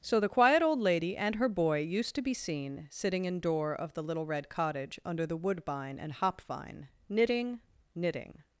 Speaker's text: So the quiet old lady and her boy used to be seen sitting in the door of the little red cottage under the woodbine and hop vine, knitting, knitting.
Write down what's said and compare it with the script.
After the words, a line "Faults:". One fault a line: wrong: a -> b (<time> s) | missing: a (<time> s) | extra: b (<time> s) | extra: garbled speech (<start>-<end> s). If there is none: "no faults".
So the quiet old lady and her boy used to be seen sitting in door of the little red cottage under the woodbine and hop vine, knitting, knitting.
Faults:
missing: the (3.4 s)